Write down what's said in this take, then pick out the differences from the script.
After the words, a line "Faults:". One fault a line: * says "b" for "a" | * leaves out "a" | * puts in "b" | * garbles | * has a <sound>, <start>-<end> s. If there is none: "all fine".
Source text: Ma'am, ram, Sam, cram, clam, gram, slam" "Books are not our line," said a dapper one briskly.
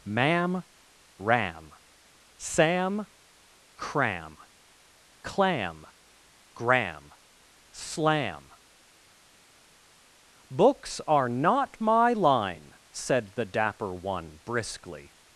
Ma'am, ram, Sam, cram, clam, gram, slam" "Books are not my line," said the dapper one briskly.
Faults:
* says "my" for "our"
* says "the" for "a"